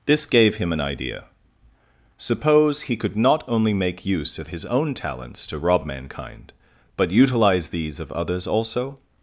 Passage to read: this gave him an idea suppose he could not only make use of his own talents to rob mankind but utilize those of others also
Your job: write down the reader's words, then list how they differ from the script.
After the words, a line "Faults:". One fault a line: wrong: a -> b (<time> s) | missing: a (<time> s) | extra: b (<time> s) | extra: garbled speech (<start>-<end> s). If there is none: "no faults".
this gave him an idea suppose he could not only make use of his own talents to rob mankind but utilize these of others also
Faults:
wrong: those -> these (7.7 s)